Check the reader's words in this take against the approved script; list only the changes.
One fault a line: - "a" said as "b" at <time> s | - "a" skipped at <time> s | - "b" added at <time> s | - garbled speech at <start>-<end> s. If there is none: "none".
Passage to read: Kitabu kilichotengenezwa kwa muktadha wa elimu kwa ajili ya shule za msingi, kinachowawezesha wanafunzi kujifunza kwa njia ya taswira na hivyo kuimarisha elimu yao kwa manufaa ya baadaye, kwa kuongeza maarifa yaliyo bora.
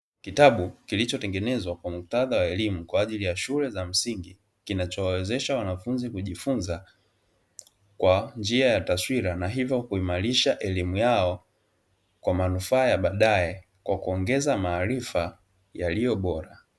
none